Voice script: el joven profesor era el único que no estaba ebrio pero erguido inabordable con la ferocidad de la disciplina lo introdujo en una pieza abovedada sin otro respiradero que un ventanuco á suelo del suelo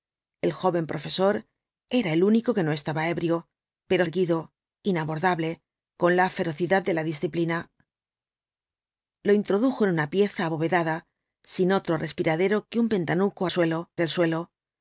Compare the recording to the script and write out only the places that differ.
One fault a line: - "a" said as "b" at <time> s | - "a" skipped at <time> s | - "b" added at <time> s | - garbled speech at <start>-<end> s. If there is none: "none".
none